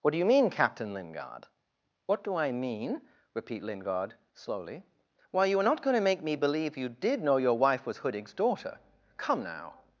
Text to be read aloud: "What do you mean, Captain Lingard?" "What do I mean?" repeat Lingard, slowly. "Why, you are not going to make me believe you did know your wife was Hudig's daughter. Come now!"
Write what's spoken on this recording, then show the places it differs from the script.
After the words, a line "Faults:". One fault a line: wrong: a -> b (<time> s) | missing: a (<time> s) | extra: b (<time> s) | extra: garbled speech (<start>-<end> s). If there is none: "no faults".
"What do you mean, Captain Lingard?" "What do I mean?" repeat Lingard, slowly. "Why, you are not going to make me believe you did know your wife was Hudig's daughter. Come now!"
Faults:
no faults